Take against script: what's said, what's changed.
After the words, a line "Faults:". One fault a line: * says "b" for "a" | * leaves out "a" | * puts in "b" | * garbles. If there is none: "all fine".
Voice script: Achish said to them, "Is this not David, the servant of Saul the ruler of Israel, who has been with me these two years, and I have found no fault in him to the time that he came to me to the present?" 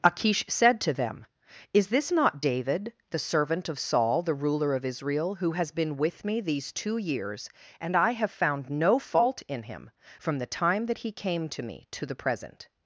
Achish said to them, "Is this not David, the servant of Saul the ruler of Israel, who has been with me these two years, and I have found no fault in him from the time that he came to me to the present?"
Faults:
* says "from" for "to"